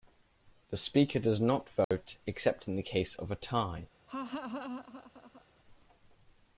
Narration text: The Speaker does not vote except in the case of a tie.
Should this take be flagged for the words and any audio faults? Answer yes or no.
yes